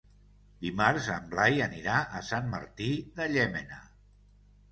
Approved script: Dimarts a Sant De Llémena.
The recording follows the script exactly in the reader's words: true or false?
false